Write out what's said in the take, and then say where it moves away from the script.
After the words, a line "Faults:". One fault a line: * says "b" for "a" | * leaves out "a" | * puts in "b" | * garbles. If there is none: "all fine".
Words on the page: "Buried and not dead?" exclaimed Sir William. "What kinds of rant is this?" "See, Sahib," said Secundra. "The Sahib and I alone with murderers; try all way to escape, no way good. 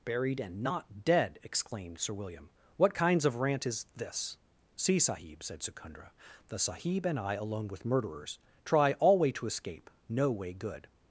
"Buried and not dead?" exclaimed Sir William. "What kinds of rant is this?" "See, Sahib," said Secundra. "The Sahib and I alone with murderers; try all way to escape, no way good.
Faults:
all fine